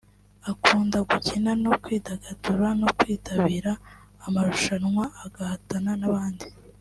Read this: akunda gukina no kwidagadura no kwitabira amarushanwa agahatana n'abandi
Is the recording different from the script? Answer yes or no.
no